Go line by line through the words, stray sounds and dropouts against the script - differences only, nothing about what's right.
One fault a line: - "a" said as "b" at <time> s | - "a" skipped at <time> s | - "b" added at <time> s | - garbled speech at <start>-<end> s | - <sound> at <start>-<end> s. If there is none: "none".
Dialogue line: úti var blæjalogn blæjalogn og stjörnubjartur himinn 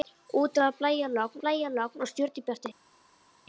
none